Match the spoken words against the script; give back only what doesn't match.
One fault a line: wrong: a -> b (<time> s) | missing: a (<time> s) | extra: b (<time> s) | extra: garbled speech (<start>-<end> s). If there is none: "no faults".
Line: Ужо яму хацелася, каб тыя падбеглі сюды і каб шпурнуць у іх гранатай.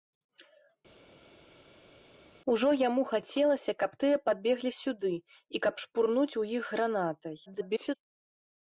extra: garbled speech (7.5-8.0 s)